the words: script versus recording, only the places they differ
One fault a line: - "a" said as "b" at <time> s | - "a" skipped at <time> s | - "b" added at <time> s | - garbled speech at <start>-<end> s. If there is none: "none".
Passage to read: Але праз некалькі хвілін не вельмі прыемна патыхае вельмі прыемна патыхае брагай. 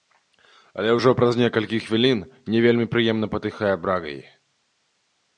- "ўжо" added at 1.0 s
- "вельмі прыемна патыхае" skipped at 3.7 s